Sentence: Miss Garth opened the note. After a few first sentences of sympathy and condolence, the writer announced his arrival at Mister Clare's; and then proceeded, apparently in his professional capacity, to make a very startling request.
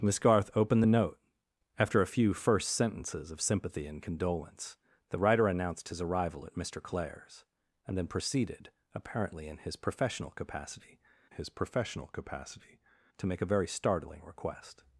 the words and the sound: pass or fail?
fail